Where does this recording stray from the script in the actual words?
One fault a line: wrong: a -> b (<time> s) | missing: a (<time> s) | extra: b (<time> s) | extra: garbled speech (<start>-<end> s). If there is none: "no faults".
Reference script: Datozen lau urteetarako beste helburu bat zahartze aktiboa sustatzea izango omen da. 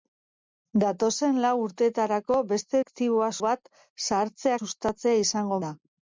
wrong: helburu -> aktiboa (2.8 s)
missing: aktiboa (4.5 s)
missing: omen (5.6 s)